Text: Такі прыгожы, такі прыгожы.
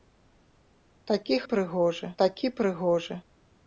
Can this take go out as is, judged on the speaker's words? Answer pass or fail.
pass